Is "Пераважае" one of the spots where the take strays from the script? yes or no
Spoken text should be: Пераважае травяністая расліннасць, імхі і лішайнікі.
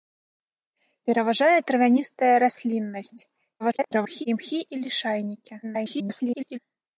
no